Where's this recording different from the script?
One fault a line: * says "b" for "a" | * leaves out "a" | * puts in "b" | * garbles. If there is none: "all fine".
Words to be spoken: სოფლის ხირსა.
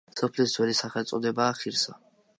* puts in "ძველი სახელწოდებაა"